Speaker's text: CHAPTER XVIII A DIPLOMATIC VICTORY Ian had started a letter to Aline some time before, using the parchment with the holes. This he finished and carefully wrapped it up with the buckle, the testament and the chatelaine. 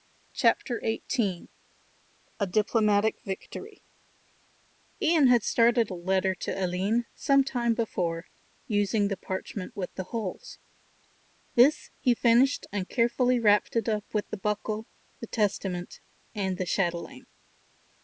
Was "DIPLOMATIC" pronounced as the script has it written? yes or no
yes